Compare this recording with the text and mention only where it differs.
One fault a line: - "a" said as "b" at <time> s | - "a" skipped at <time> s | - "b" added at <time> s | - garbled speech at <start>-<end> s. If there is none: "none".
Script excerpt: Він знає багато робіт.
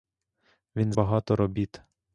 - "знає" skipped at 0.9 s